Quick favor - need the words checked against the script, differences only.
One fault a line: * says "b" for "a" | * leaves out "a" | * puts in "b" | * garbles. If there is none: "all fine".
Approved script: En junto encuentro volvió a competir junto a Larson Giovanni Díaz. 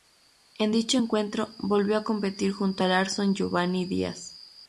* says "dicho" for "junto"